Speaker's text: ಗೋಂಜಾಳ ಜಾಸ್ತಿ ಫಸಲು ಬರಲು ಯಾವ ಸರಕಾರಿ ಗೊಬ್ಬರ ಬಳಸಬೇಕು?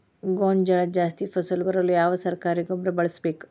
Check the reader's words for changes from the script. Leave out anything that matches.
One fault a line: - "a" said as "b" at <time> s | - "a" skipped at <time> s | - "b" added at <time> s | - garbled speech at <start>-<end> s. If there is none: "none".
none